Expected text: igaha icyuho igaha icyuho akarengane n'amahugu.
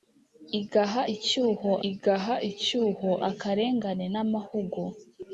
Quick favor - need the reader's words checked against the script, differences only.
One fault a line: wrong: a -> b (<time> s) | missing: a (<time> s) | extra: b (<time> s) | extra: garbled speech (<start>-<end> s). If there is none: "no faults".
no faults